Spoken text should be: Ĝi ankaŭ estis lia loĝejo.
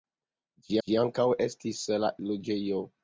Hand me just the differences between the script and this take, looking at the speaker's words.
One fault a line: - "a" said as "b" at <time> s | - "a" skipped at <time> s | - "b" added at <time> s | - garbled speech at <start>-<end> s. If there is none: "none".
- "ĝi" added at 0.9 s
- "lia" skipped at 1.9 s